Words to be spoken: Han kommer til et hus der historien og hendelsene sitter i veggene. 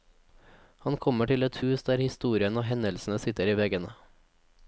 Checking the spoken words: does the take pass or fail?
pass